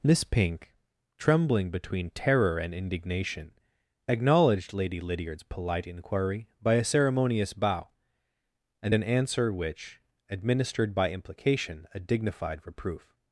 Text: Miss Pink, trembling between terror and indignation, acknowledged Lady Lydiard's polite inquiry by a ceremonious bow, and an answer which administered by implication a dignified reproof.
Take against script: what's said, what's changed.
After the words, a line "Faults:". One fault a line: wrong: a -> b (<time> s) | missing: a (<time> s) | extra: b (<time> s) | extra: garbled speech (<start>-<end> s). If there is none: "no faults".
Miss Pink, trembling between terror and indignation, acknowledged Lady Lydiard's polite inquiry by a ceremonious bow, and an answer which administered by implication a dignified reproof.
Faults:
no faults